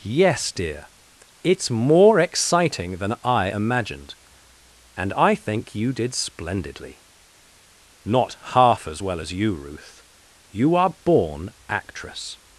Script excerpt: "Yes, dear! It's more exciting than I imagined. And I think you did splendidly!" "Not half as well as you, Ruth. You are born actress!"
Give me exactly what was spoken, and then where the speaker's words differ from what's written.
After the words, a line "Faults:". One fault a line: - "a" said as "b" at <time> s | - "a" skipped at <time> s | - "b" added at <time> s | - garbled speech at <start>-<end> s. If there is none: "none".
"Yes, dear! It's more exciting than I imagined. And I think you did splendidly!" "Not half as well as you, Ruth. You are born actress!"
Faults:
none